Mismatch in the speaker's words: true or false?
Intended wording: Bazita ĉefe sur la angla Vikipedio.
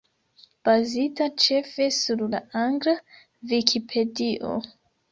false